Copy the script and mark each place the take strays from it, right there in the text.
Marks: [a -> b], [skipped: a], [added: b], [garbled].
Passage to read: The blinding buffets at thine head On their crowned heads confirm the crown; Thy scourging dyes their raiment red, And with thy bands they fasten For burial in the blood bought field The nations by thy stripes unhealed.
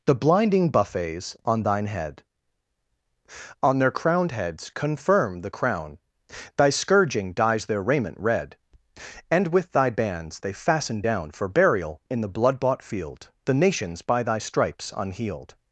The blinding buffets [at -> on] thine head On their crowned heads confirm the crown; Thy scourging dyes their raiment red, And with thy bands they fasten [added: down] For burial in the blood bought field The nations by thy stripes unhealed.